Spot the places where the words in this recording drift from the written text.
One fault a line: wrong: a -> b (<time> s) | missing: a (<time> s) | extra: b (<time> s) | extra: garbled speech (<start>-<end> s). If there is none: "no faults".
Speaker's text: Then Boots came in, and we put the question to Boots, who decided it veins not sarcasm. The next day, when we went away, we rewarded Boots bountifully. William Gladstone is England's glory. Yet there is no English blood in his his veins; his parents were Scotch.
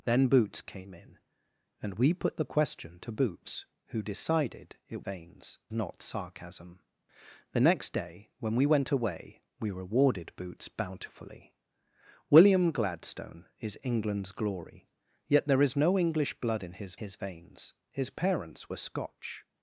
no faults